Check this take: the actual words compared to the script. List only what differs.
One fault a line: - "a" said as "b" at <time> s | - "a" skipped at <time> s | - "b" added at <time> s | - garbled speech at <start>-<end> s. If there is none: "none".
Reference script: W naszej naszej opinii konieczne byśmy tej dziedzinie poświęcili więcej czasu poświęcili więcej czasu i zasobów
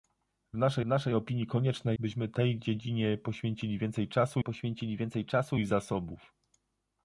none